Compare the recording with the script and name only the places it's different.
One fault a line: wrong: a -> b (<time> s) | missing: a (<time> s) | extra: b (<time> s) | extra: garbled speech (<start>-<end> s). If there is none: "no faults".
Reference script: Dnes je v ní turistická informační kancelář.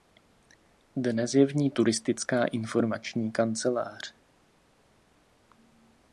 no faults